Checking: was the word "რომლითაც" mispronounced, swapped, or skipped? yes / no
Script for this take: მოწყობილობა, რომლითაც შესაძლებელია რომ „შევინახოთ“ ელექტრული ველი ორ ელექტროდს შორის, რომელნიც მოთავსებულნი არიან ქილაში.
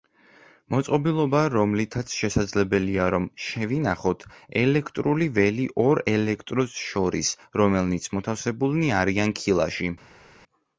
no